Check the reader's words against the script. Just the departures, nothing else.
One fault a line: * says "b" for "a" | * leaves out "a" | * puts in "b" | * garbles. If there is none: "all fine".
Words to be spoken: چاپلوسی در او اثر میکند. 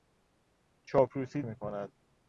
* leaves out "در او اثر"